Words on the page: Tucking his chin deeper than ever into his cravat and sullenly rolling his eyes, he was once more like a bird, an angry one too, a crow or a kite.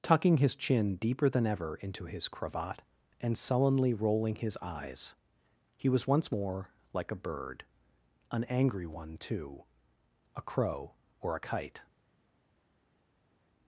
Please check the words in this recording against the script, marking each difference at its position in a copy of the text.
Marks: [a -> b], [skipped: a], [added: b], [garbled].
Tucking his chin deeper than ever into his cravat and sullenly rolling his eyes, he was once more like a bird, an angry one too, a crow or a kite.